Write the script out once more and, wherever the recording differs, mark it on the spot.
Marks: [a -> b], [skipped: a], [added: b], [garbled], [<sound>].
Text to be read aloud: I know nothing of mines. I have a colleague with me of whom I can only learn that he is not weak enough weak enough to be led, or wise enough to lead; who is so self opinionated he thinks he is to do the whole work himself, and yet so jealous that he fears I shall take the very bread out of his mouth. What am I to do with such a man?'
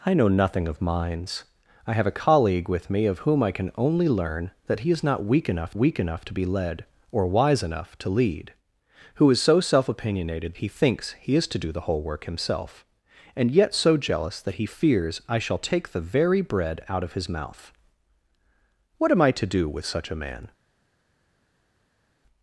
I know nothing of mines. I have a colleague with me of whom I can only learn that he is not weak enough weak enough to be led, or wise enough to lead; who is so self opinionated he thinks he is to do the whole work himself, and yet so jealous that he fears I shall take the very bread out of his mouth. What am I to do with such a man?'